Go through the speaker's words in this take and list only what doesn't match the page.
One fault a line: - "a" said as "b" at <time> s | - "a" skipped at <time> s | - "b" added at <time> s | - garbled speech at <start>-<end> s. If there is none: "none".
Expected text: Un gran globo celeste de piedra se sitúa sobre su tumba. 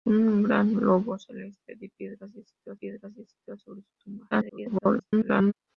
- "piedra se sitúa" added at 2.8 s
- garbled speech at 4.3-5.5 s